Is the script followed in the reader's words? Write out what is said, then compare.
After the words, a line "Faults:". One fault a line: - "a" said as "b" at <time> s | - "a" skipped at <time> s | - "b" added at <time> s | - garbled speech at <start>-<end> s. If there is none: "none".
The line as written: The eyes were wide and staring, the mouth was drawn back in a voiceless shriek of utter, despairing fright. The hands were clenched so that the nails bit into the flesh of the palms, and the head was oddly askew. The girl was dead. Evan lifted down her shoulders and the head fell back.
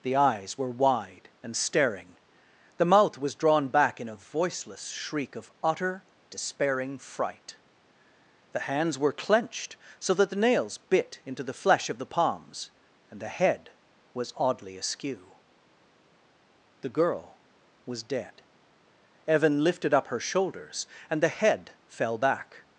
The eyes were wide and staring, the mouth was drawn back in a voiceless shriek of utter, despairing fright. The hands were clenched so that the nails bit into the flesh of the palms, and the head was oddly askew. The girl was dead. Evan lifted up her shoulders and the head fell back.
Faults:
- "down" said as "up" at 19.9 s